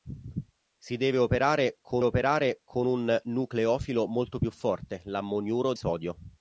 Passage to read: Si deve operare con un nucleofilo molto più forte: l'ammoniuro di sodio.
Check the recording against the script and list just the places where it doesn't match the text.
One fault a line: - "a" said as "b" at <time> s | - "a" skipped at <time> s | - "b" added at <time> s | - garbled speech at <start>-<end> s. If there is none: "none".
- "operare con" added at 2.0 s
- "di" skipped at 5.7 s